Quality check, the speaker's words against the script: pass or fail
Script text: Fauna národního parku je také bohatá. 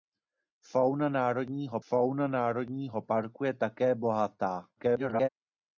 fail